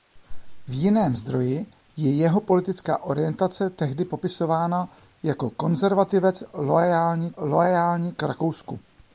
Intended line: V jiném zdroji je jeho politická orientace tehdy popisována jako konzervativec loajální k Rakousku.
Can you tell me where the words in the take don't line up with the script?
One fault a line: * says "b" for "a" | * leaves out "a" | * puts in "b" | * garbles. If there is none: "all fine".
* puts in "loajální"